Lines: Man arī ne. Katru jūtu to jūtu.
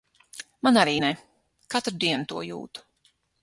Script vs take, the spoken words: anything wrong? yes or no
yes